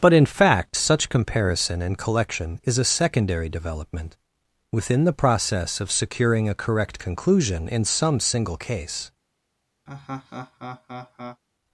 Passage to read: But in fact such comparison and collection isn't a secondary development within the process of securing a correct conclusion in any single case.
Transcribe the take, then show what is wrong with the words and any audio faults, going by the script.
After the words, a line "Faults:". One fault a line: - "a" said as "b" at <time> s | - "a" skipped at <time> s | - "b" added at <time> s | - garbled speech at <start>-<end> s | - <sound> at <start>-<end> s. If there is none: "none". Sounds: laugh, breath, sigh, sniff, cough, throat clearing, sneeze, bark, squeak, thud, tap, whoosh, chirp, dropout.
But in fact such comparison and collection is a secondary development within the process of securing a correct conclusion in some single case.
Faults:
- "isn't" said as "is" at 2.6 s
- "any" said as "some" at 7.8 s
- laugh at 9.9-11.4 s